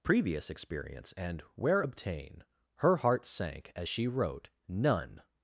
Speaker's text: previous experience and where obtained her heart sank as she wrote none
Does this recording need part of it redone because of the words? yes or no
yes